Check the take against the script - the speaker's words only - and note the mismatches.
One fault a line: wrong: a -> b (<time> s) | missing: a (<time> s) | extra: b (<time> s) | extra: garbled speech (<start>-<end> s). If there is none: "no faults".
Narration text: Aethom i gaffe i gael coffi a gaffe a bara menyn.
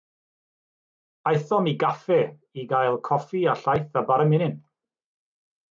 wrong: gaffe -> llaeth (3.6 s)